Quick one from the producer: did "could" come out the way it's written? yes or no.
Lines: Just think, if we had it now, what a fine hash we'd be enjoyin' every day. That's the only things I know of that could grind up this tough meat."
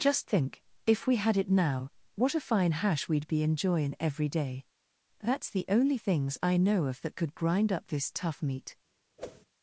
yes